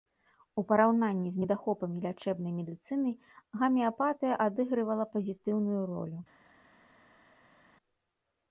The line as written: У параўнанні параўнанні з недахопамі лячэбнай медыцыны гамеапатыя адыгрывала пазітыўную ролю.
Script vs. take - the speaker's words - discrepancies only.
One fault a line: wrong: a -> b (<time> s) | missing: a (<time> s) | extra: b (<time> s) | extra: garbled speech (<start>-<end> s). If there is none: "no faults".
missing: параўнанні (1.3 s)